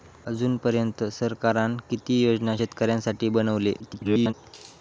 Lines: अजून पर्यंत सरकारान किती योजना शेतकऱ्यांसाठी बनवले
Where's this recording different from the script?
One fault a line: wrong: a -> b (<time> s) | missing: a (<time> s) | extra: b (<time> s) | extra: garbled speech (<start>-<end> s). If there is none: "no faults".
extra: garbled speech (3.8-4.3 s)